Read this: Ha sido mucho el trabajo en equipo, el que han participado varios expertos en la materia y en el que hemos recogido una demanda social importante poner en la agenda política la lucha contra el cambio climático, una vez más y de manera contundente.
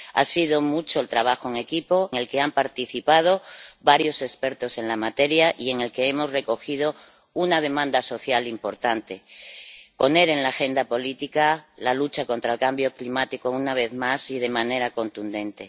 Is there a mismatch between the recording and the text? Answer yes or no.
no